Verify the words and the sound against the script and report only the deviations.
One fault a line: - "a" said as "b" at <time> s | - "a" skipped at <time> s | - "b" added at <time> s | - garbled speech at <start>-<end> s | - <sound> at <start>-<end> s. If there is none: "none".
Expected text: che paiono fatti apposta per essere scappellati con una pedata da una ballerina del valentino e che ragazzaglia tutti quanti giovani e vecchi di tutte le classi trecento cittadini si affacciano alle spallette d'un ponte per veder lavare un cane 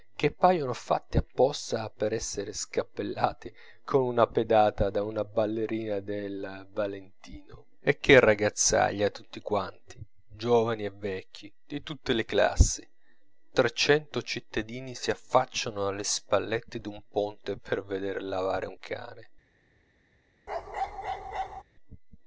- bark at 20.5-21.6 s